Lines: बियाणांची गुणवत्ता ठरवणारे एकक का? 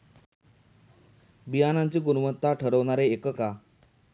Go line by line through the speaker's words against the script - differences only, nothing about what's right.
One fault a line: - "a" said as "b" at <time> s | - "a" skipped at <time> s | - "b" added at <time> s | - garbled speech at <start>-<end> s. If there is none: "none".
none